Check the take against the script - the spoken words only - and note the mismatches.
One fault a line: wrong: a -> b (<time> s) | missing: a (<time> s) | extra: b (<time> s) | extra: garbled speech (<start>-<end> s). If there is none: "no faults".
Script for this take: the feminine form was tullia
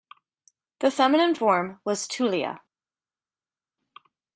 no faults